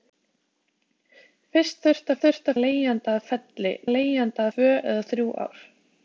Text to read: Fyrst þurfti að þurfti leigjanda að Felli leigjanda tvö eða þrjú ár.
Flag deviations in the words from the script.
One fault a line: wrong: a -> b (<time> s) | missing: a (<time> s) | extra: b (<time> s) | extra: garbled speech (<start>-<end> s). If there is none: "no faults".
no faults